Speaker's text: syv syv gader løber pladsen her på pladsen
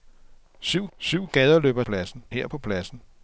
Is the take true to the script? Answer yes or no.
yes